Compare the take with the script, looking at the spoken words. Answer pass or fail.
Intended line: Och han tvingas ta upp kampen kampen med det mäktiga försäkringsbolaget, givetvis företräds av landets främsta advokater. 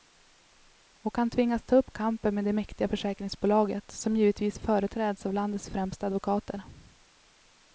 fail